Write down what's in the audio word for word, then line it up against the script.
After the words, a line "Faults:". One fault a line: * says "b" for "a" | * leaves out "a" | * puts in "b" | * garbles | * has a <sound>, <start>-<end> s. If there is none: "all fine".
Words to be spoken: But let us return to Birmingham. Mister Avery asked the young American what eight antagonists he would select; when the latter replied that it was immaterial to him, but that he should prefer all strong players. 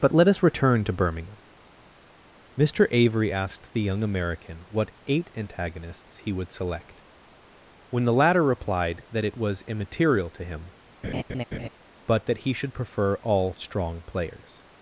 But let us return to Birmingham. Mister Avery asked the young American what eight antagonists he would select; when the latter replied that it was immaterial to him, but that he should prefer all strong players.
Faults:
* has a laugh, 11.0-11.7 s